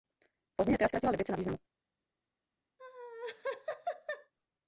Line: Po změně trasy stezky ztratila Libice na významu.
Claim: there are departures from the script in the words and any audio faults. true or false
true